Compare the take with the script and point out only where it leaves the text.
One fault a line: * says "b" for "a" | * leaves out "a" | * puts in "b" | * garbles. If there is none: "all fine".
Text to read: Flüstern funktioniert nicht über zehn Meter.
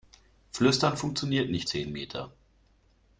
* leaves out "über"